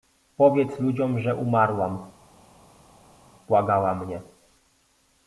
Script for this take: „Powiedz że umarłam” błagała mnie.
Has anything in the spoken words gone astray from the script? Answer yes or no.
yes